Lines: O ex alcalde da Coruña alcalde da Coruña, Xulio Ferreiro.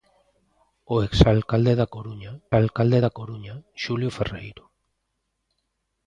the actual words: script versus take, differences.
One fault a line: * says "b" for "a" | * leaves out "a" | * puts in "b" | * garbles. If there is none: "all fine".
all fine